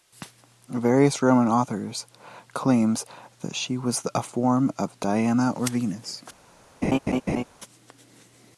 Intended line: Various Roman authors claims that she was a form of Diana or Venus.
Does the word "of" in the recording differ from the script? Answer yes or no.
no